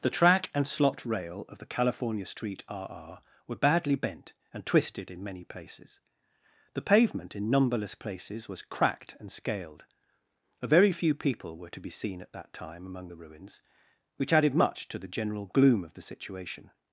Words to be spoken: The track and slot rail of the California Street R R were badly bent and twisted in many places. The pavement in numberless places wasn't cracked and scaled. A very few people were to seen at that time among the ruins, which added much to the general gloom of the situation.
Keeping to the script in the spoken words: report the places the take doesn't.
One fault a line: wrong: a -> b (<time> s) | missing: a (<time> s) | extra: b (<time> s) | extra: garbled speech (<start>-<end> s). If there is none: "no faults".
wrong: wasn't -> was (8.5 s)
extra: be (11.8 s)